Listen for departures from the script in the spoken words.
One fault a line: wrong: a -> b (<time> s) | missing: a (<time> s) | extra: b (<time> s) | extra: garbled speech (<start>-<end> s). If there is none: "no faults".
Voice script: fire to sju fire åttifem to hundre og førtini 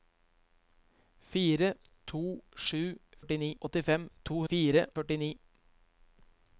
wrong: fire -> førtini (3.2 s)
wrong: hundre -> fire (4.5 s)